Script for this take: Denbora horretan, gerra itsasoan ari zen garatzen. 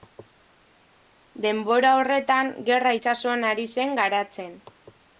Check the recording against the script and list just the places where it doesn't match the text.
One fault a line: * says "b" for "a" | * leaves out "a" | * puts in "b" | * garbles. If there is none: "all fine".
all fine